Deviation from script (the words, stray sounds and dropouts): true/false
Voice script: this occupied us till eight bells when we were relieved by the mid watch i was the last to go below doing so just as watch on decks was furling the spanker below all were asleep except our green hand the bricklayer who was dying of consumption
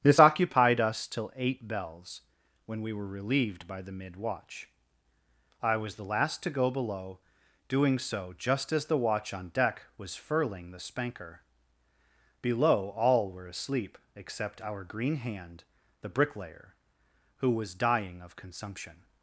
true